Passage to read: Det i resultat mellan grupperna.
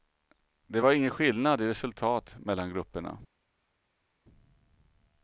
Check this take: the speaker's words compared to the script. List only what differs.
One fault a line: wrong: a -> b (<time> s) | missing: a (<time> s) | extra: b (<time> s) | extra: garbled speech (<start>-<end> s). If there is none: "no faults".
extra: var ingen skillnad (0.8 s)